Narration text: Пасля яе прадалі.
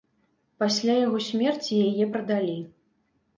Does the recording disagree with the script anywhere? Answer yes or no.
yes